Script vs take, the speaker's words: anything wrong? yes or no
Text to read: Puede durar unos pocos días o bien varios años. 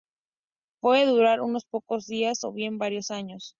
no